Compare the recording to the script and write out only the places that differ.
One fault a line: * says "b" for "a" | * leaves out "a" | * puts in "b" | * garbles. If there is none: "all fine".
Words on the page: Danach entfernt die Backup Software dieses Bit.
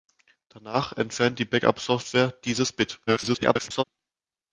* garbles